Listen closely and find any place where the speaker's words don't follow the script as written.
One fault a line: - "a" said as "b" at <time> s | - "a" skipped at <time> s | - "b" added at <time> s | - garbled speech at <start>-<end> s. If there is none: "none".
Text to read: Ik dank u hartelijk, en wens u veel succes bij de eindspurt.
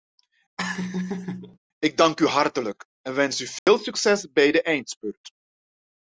none